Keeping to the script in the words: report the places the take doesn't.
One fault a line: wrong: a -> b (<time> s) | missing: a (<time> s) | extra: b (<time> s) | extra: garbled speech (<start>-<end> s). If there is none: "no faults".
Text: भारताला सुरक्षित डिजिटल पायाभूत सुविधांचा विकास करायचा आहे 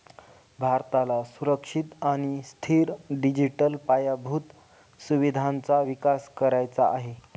extra: आणि स्थिर (2.0 s)